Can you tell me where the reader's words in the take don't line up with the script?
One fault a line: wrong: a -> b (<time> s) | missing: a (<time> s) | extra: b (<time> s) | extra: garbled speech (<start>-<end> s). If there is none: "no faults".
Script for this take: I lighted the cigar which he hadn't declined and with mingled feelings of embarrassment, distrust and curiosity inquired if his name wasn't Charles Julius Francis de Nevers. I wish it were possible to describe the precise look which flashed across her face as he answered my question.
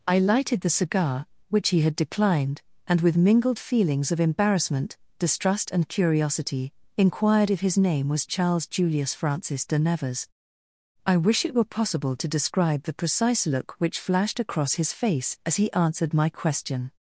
wrong: hadn't -> had (1.8 s)
wrong: wasn't -> was (8.1 s)
wrong: her -> his (14.8 s)